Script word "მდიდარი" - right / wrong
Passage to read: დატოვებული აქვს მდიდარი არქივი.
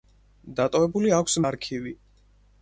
wrong